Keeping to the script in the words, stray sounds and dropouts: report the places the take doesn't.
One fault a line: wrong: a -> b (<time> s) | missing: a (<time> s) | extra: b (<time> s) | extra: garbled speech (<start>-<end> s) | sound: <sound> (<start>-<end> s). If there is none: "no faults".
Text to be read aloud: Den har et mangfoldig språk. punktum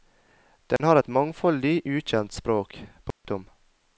sound: dropout (0.8-0.8 s)
extra: ukjent (1.9 s)
sound: dropout (3.1-3.2 s)